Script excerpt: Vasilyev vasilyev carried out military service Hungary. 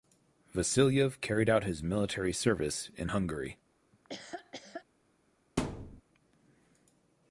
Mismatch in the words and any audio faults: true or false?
true